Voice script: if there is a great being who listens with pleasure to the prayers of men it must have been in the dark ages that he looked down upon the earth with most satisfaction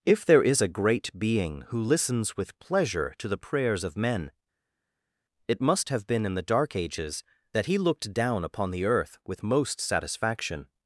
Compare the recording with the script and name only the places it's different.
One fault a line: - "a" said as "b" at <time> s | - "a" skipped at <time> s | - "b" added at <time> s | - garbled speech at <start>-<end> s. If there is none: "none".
none